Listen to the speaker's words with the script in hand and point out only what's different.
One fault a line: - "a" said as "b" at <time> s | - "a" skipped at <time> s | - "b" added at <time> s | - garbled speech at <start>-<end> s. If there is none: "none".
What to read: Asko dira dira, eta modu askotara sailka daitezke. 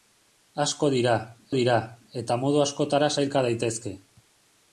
none